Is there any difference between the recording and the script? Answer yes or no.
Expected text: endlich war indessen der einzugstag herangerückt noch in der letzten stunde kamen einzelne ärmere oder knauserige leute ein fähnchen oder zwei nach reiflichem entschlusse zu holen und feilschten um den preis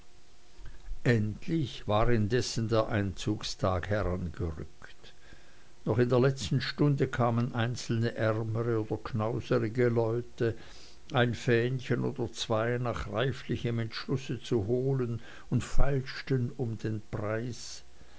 no